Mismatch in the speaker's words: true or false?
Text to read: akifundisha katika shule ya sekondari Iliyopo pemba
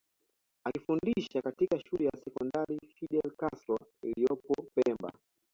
true